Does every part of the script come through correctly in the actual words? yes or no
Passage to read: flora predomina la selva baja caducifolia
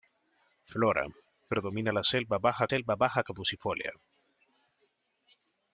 no